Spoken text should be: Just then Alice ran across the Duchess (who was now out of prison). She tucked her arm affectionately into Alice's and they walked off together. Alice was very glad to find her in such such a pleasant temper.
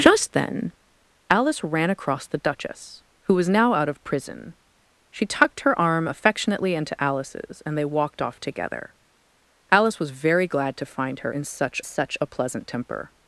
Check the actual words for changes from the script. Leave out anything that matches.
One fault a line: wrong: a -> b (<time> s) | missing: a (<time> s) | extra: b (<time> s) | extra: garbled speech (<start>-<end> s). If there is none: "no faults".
no faults